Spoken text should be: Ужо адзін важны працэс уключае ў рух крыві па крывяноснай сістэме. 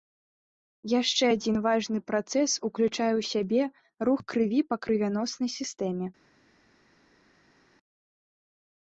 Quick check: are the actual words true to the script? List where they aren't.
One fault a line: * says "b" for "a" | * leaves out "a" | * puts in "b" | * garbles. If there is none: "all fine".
* says "Яшчэ" for "Ужо"
* puts in "сябе"